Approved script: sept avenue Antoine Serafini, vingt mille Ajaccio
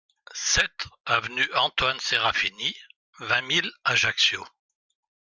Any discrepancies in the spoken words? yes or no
no